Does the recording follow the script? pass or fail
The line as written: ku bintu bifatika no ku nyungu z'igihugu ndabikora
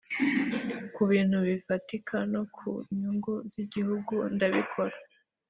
pass